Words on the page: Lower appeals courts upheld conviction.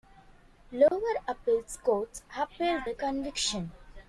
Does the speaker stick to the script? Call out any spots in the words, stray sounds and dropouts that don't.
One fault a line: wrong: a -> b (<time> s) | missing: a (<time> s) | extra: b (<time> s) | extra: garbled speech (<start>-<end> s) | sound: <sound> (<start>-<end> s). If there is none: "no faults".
sound: dropout (0.9-0.9 s)
extra: the (2.8 s)